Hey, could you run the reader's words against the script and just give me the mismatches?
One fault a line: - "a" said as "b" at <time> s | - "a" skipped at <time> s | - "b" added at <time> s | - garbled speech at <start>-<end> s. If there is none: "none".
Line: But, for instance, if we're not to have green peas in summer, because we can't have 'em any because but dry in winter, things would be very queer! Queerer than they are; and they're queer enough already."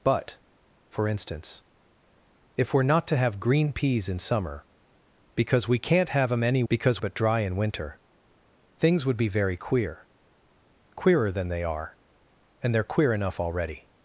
none